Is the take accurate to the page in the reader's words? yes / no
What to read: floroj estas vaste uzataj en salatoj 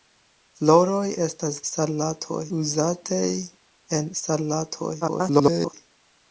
no